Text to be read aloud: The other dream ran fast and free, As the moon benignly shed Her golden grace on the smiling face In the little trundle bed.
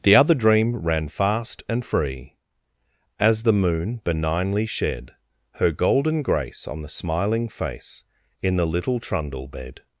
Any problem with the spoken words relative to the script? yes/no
no